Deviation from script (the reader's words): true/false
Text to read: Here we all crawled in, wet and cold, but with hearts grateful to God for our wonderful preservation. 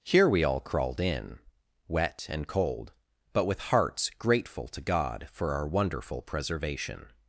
false